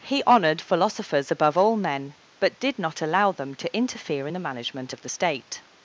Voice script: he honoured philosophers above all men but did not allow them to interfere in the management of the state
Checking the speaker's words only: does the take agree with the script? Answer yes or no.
yes